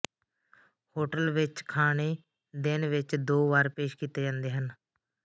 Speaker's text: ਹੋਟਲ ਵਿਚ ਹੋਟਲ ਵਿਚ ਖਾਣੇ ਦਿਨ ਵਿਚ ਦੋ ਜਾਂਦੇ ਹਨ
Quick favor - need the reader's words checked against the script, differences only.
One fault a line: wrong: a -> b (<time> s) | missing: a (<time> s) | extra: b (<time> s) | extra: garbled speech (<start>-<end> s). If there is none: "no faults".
missing: ਹੋਟਲ ਵਿਚ (1.6 s)
extra: ਵਾਰ ਪੇਸ਼ ਕੀਤੇ (3.5 s)